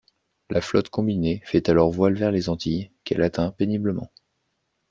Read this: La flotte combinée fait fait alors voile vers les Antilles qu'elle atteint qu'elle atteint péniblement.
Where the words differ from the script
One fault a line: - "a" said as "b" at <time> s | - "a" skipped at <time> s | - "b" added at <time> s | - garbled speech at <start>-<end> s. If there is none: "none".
- "fait" skipped at 1.7 s
- "qu'elle atteint" skipped at 3.5 s